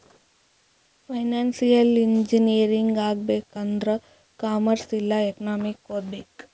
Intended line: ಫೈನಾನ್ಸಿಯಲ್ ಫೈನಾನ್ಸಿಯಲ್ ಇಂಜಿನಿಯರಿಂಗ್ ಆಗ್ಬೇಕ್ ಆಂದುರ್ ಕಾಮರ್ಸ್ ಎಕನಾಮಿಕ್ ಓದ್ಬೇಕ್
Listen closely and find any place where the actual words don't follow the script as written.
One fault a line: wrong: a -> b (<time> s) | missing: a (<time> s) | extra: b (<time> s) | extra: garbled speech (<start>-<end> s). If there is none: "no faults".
missing: ಫೈನಾನ್ಸಿಯಲ್ (1.9 s)
extra: ಇಲ್ಲಾ (4.9 s)